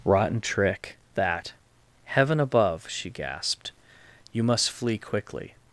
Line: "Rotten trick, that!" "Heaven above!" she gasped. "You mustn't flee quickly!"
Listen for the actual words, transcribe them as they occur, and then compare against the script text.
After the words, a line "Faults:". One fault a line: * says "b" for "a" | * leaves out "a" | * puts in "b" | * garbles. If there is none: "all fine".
"Rotten trick, that!" "Heaven above!" she gasped. "You must flee quickly!"
Faults:
* says "must" for "mustn't"